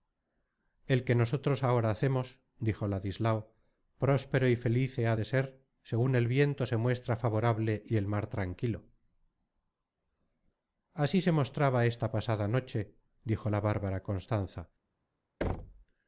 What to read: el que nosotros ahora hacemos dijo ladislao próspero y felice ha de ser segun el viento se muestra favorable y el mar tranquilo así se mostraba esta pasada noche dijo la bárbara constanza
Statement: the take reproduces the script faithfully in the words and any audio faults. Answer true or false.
false